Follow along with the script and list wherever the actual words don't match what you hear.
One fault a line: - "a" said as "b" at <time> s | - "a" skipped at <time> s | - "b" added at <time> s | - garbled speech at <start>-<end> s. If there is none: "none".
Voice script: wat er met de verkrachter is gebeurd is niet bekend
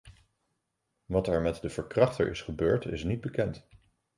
none